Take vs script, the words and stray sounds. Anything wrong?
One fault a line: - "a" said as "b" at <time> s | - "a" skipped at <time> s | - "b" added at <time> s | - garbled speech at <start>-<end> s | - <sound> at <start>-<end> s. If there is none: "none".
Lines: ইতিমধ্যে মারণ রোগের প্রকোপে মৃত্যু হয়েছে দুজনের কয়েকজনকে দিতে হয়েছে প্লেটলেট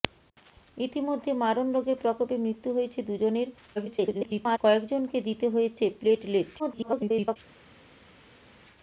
- garbled speech at 3.8-4.6 s
- garbled speech at 6.6-7.4 s